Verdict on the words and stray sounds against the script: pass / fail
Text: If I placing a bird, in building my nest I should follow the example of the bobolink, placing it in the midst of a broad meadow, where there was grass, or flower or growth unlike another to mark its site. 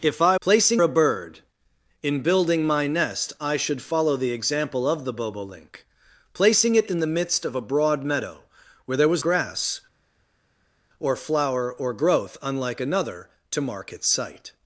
pass